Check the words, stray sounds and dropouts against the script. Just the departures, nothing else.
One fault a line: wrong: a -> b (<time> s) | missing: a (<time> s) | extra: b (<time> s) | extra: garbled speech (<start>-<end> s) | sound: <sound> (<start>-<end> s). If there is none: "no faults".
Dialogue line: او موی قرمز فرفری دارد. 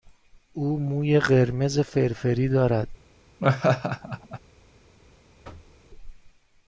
sound: laugh (3.4-4.4 s)
sound: thud (5.4-5.8 s)